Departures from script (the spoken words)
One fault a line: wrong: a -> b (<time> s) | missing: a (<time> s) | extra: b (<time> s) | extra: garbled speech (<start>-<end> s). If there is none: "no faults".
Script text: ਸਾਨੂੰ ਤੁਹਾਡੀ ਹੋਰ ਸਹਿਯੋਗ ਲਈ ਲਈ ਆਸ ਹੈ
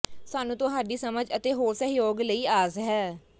extra: ਸਮਝ ਅਤੇ (1.0 s)
missing: ਲਈ (2.5 s)